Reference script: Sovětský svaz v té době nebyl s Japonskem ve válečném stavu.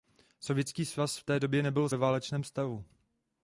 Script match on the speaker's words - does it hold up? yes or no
no